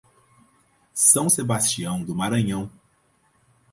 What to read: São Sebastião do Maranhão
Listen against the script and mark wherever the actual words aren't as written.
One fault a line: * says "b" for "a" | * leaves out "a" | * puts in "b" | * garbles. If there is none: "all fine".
all fine